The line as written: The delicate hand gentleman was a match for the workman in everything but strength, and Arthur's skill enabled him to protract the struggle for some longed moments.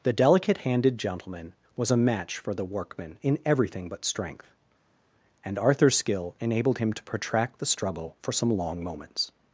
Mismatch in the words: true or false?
true